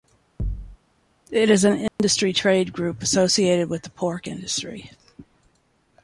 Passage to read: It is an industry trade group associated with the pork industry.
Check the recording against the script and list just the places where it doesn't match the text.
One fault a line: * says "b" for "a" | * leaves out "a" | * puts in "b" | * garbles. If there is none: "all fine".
all fine